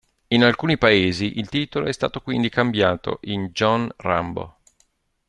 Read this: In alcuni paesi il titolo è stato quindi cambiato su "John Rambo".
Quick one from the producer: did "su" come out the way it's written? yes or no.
no